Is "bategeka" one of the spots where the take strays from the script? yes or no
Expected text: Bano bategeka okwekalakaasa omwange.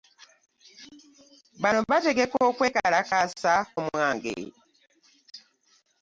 no